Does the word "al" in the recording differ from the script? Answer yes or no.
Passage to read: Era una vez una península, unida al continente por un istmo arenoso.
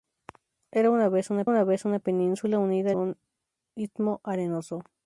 yes